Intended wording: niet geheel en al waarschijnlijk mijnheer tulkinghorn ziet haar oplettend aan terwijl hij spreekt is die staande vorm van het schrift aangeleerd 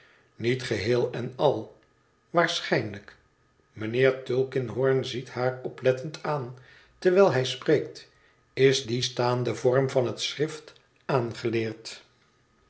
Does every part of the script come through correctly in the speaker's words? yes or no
yes